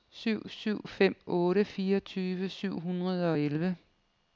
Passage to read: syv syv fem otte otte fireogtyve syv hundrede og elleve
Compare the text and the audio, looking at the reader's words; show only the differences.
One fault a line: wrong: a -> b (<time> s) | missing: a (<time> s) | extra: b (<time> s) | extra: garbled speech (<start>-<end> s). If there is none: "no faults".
missing: otte (1.6 s)